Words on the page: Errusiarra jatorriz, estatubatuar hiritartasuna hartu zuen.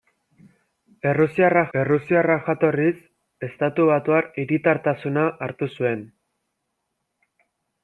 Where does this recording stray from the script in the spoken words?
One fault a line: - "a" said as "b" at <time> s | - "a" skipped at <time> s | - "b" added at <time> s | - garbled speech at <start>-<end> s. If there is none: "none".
- "errusiarra" added at 1.8 s